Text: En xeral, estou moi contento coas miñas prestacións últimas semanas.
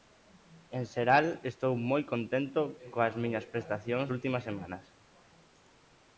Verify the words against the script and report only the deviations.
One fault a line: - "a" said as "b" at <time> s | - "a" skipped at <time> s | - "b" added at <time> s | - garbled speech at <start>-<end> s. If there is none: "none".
none